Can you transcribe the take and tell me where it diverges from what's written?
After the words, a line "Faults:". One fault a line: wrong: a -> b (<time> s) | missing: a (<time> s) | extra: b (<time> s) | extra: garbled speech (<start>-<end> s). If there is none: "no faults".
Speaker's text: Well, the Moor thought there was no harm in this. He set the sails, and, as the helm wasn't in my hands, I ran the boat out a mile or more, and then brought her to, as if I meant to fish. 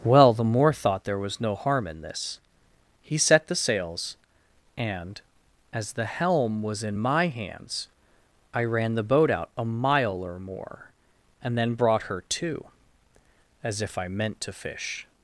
Well, the Moor thought there was no harm in this. He set the sails, and, as the helm was in my hands, I ran the boat out a mile or more, and then brought her to, as if I meant to fish.
Faults:
wrong: wasn't -> was (6.6 s)